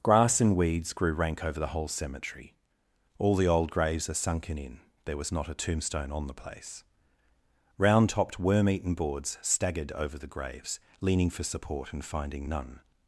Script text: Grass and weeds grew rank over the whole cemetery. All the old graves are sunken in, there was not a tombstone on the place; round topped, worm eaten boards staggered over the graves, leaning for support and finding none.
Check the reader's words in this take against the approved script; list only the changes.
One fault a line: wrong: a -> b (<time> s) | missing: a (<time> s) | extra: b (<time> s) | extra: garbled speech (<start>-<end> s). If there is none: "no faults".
no faults